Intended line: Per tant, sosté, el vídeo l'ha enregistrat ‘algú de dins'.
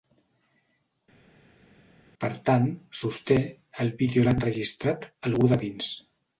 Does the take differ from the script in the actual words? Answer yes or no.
no